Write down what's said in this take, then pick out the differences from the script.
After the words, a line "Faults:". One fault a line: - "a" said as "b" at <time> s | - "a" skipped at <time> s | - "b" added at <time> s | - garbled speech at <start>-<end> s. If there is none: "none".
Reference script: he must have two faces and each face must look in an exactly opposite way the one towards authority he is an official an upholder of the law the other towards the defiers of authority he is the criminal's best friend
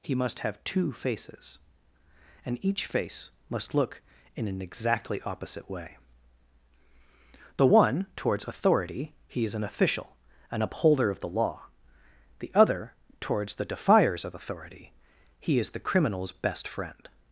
he must have two faces and each face must look in an exactly opposite way the one towards authority he is an official an upholder of the law the other towards the defiers of authority he is the criminal's best friend
Faults:
none